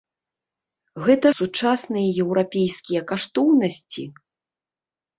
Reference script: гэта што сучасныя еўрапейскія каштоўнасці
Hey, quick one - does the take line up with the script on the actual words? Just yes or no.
no